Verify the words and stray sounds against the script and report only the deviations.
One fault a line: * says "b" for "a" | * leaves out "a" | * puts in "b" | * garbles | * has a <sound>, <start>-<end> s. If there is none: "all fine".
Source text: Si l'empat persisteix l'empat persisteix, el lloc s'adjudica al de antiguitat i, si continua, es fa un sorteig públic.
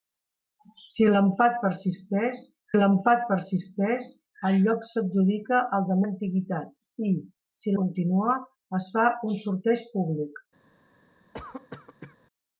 * has a cough, 11.3-12.2 s